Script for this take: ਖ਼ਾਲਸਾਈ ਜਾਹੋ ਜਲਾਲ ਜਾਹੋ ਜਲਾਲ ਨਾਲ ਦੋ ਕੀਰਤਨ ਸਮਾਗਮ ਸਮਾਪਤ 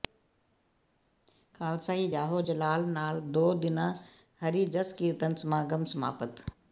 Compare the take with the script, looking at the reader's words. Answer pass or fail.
fail